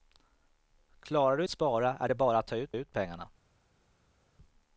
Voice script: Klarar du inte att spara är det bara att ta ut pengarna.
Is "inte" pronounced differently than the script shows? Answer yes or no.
yes